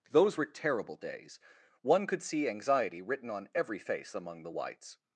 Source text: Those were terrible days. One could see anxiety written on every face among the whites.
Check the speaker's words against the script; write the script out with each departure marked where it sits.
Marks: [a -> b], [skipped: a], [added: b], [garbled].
Those were terrible days. One could see anxiety written on every face among the whites.